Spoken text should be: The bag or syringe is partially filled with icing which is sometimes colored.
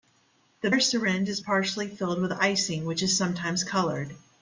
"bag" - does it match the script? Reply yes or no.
no